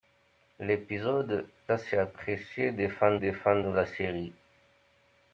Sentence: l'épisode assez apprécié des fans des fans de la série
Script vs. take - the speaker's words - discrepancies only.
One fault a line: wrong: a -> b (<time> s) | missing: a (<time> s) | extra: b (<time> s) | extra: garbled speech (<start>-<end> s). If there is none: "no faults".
no faults